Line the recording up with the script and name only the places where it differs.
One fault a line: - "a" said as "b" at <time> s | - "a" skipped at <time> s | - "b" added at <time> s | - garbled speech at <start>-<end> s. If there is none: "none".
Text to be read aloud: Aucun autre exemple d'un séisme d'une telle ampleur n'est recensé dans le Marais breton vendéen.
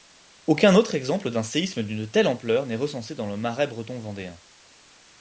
none